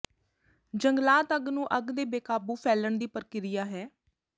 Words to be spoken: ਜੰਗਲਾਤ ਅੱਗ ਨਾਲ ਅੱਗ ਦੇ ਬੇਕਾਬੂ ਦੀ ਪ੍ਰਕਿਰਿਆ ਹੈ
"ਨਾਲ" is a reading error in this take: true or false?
true